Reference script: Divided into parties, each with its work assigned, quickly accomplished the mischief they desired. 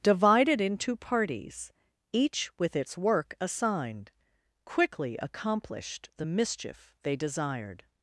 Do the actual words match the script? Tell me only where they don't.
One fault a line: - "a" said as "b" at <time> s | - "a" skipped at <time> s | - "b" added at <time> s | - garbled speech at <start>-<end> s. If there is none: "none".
none